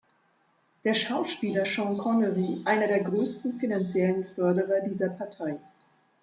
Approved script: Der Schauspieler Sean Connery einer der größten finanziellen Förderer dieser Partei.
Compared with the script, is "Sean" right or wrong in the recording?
right